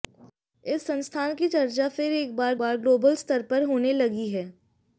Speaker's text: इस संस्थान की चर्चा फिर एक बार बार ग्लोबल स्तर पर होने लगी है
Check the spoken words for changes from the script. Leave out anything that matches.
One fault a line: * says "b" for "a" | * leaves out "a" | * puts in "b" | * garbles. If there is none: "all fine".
all fine